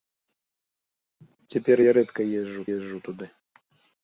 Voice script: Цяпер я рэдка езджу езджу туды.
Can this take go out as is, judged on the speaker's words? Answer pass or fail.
pass